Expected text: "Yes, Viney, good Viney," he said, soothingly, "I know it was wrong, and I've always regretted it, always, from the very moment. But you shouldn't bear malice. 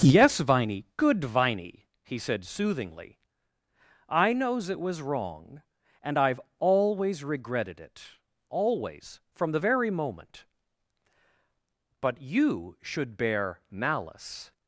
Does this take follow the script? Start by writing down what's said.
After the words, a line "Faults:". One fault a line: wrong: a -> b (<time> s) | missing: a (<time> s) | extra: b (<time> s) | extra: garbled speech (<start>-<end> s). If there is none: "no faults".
"Yes, Viney, good Viney," he said, soothingly, "I knows it was wrong, and I've always regretted it, always, from the very moment. But you should bear malice.
Faults:
wrong: know -> knows (4.3 s)
wrong: shouldn't -> should (12.8 s)